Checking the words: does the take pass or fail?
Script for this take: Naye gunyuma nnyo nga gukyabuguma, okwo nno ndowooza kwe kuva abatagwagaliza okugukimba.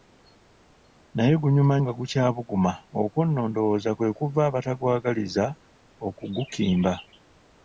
fail